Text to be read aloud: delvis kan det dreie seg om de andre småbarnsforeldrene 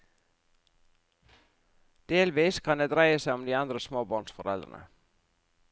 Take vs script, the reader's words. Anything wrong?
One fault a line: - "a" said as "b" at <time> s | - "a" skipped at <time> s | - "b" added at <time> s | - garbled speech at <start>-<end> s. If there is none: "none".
none